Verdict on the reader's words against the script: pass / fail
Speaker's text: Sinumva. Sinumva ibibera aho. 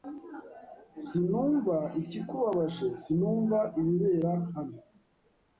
fail